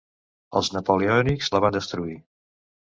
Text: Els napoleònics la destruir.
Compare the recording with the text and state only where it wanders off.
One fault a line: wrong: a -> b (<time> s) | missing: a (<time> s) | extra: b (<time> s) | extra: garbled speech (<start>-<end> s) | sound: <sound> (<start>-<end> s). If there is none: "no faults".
extra: van (1.7 s)